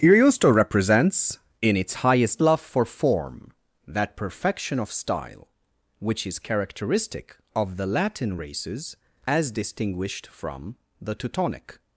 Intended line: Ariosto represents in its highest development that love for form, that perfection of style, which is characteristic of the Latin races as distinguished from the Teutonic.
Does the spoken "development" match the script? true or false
false